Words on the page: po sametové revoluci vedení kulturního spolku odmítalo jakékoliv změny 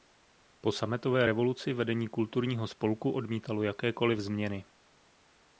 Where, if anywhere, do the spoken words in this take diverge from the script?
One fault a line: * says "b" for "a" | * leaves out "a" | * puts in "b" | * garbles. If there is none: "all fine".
all fine